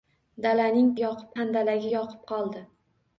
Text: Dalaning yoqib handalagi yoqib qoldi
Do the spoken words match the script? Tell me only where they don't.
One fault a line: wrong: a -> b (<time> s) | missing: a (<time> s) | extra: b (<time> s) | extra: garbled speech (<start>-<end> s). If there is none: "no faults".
no faults